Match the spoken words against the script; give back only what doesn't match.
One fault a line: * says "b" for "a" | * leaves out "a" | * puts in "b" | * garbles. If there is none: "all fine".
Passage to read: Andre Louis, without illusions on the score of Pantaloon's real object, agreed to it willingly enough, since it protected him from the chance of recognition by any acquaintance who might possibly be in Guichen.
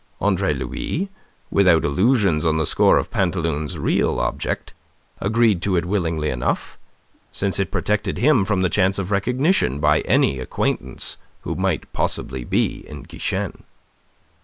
all fine